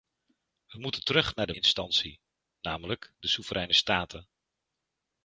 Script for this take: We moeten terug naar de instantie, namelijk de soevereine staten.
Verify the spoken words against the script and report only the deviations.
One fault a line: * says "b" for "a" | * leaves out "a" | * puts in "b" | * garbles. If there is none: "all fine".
all fine